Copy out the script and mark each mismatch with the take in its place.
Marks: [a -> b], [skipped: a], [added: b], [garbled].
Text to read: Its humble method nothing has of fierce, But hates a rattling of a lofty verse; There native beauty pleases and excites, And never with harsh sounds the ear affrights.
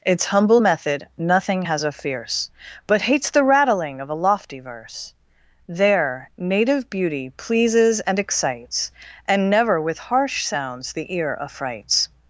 Its humble method nothing has of fierce, But hates [a -> the] rattling of a lofty verse; There native beauty pleases and excites, And never with harsh sounds the ear affrights.